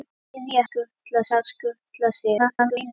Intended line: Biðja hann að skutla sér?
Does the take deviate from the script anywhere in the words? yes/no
yes